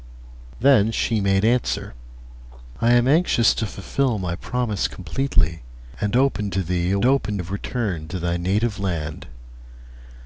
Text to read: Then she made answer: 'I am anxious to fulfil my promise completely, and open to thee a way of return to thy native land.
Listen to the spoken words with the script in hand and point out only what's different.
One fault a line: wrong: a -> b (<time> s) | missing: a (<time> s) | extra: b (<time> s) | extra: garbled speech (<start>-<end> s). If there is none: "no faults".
wrong: way -> open (7.0 s)